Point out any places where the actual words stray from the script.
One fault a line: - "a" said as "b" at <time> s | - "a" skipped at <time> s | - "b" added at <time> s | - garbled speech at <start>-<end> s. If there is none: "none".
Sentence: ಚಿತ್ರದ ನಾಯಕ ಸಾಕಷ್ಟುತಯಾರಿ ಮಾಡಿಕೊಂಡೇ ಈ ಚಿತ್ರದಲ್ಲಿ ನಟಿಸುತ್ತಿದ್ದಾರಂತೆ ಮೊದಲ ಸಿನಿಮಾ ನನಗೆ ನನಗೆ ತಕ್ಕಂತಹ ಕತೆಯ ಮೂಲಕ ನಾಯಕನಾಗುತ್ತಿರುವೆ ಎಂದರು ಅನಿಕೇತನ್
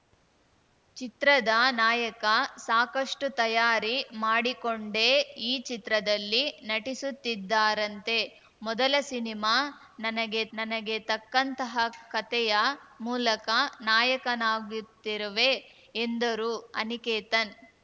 none